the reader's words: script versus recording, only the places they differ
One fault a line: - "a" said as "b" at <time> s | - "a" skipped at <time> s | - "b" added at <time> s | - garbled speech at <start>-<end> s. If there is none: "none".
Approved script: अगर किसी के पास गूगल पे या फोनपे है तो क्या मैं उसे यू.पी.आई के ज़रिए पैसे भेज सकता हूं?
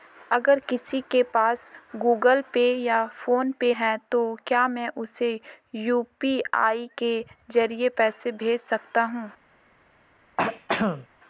none